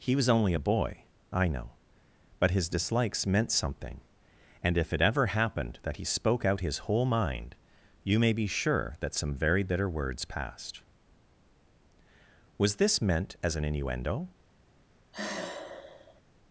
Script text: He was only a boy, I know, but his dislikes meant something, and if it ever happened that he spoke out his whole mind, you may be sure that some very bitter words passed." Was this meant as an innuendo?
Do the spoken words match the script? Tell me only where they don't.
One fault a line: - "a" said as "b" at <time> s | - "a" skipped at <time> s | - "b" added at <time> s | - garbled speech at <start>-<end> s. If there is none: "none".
none